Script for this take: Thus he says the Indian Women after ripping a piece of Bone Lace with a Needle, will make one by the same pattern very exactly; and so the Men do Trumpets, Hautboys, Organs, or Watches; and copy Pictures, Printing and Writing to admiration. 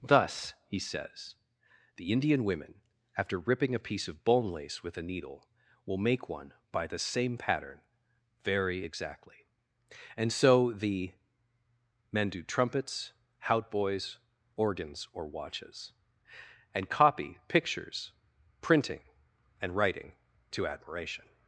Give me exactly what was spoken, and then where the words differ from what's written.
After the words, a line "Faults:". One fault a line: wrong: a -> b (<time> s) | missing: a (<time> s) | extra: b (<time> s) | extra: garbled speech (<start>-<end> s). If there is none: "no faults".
Thus he says the Indian Women after ripping a piece of Bone Lace with a Needle, will make one by the same pattern very exactly; and so the Men do Trumpets, Hautboys, Organs, or Watches; and copy Pictures, Printing and Writing to admiration.
Faults:
no faults